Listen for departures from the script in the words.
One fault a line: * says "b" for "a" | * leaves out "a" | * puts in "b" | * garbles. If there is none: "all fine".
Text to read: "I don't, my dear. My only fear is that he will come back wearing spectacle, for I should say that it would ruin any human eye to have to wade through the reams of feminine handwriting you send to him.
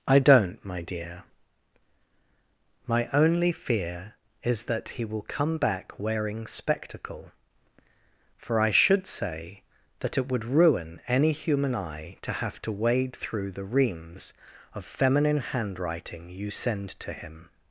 all fine